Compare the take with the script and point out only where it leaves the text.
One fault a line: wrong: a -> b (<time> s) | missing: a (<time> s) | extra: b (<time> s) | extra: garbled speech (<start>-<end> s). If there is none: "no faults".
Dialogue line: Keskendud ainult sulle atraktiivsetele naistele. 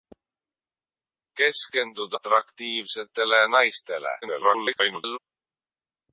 missing: ainult sulle (2.1 s)
extra: garbled speech (4.2-5.2 s)